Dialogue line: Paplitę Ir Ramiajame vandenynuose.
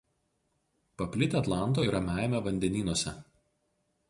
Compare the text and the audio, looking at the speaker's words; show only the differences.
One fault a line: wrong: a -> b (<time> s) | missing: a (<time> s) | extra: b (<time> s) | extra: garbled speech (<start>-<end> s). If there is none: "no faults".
extra: Atlanto (1.4 s)